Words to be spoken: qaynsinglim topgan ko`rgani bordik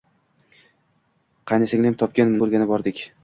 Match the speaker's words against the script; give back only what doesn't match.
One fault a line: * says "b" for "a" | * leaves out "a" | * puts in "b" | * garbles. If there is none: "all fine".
all fine